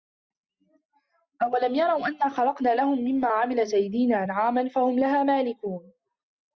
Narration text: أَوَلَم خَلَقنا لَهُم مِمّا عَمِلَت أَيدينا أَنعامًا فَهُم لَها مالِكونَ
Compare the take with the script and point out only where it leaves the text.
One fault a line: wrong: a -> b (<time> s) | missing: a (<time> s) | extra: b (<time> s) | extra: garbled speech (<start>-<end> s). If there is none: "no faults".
extra: يَرَوا أَنّا (1.8 s)